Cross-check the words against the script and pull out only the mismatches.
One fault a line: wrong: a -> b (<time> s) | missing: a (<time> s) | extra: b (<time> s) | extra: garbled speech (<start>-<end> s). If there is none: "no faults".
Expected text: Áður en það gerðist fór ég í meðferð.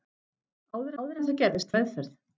extra: áður (1.0 s)
missing: fór ég (1.7 s)